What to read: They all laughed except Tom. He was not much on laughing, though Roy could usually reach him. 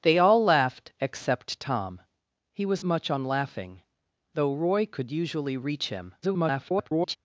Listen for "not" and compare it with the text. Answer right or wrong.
wrong